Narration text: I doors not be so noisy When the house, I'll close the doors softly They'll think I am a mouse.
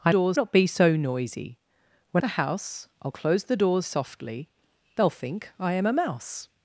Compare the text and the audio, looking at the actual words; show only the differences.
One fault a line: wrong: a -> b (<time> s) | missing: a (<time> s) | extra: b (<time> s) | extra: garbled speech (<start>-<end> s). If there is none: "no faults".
no faults